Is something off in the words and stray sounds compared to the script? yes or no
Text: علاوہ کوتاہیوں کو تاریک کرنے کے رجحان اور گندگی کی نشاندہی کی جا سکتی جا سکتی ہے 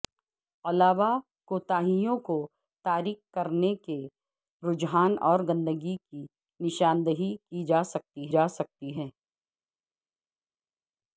no